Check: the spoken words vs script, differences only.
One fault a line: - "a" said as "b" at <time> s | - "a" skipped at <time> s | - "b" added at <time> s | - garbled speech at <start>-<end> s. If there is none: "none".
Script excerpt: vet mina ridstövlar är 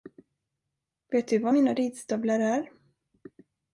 - "du var" added at 1.3 s